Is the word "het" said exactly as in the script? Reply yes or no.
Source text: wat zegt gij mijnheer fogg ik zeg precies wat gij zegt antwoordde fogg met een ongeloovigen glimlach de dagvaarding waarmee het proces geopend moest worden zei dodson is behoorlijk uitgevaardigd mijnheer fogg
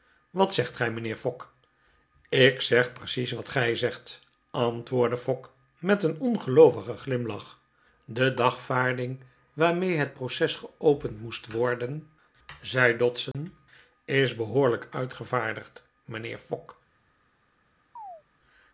yes